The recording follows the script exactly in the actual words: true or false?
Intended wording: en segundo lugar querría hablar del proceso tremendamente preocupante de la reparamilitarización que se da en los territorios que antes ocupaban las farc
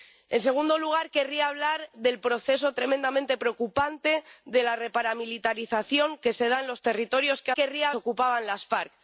false